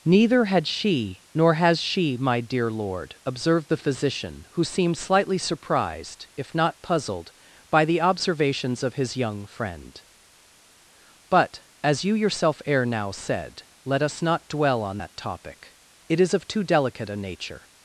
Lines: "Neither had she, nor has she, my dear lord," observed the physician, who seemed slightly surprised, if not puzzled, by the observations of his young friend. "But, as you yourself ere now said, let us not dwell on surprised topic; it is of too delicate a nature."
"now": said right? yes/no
yes